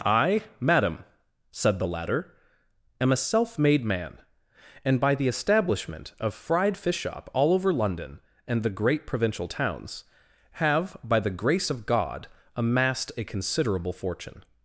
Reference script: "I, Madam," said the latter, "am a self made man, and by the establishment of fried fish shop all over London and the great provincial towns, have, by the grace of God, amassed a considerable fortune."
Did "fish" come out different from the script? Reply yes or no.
no